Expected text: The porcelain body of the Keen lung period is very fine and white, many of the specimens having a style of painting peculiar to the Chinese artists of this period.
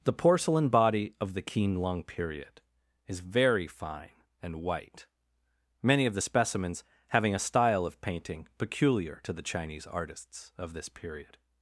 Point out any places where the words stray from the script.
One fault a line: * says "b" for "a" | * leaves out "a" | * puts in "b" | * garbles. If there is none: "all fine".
all fine